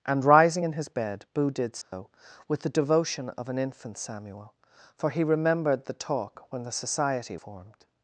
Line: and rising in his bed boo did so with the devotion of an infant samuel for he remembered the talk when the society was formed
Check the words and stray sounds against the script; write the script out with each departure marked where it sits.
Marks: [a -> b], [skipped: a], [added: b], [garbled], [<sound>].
and rising in his bed boo did so [dropout] with the devotion of an infant samuel for he remembered the talk when the society [skipped: was] formed